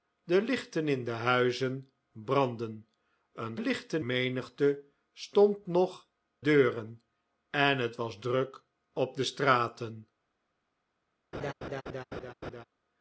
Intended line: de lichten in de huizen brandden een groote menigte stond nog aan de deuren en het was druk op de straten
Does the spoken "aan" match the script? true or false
false